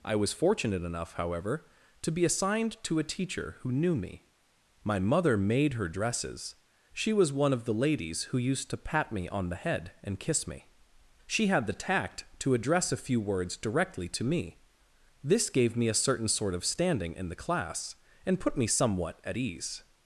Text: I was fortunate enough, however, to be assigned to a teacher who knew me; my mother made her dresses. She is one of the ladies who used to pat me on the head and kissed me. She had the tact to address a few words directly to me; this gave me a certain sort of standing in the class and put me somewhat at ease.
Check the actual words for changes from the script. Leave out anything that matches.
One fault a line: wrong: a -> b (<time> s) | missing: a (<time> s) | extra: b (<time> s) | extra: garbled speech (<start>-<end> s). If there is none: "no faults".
wrong: is -> was (7.1 s)
wrong: kissed -> kiss (10.2 s)